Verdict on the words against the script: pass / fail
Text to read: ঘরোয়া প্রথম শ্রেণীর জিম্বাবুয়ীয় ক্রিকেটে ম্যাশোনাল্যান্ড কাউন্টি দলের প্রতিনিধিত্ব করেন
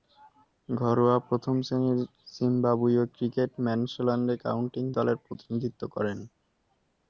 pass